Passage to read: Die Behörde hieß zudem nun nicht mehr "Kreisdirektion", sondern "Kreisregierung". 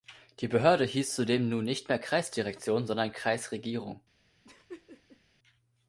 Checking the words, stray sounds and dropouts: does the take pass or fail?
fail